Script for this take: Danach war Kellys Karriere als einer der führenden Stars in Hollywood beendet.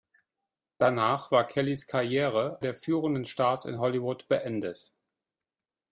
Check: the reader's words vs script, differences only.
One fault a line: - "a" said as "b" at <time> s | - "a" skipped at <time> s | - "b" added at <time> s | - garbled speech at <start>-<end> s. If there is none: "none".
- "als einer" skipped at 2.6 s